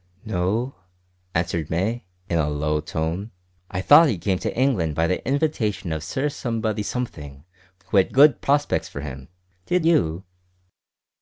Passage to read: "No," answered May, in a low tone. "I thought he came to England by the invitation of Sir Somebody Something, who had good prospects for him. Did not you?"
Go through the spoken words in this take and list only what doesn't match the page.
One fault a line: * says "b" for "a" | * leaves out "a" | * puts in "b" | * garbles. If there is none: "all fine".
* leaves out "not"